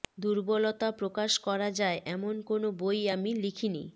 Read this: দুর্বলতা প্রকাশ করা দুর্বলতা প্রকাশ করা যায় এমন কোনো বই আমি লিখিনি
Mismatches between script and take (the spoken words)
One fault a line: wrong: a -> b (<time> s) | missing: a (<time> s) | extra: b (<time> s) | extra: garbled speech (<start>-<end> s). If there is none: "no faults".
missing: দুর্বলতা প্রকাশ করা (1.7 s)